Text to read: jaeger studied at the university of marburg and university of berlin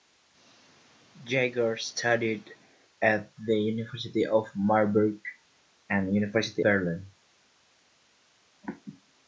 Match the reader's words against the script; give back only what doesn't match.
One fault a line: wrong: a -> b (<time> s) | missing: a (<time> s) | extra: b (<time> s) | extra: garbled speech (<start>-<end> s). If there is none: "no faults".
missing: of (6.6 s)